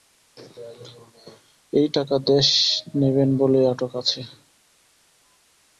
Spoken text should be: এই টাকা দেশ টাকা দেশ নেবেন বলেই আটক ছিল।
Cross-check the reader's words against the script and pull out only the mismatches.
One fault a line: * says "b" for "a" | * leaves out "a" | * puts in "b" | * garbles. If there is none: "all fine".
* leaves out "টাকা দেশ"
* says "আছে" for "ছিল"